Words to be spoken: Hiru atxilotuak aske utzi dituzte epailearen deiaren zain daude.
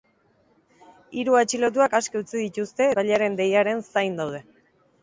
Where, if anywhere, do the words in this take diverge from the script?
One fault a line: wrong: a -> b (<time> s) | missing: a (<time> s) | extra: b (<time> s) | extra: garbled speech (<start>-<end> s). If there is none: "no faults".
no faults